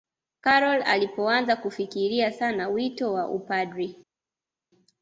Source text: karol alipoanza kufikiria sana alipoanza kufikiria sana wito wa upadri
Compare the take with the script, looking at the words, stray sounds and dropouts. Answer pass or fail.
fail